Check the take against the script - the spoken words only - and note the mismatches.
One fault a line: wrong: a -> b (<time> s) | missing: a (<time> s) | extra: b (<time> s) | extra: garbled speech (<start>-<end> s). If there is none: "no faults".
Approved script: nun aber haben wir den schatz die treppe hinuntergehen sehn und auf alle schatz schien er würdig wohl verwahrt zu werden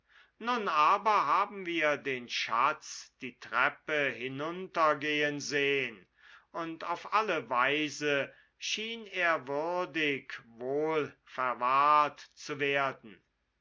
wrong: schatz -> weise (7.5 s)